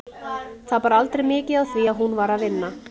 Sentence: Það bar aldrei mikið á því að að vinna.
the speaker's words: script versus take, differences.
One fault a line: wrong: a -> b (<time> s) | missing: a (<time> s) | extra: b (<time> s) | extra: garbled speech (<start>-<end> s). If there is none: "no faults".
extra: hún var (2.0 s)